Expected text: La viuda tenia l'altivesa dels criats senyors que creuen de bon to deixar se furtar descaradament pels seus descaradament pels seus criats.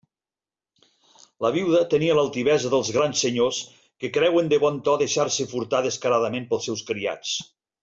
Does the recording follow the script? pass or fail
fail